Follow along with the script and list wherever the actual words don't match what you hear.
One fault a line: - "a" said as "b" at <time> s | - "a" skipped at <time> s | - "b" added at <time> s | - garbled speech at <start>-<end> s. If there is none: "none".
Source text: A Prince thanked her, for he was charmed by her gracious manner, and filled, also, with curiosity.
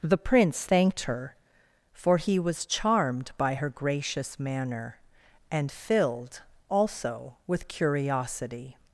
- "A" said as "The" at 0.0 s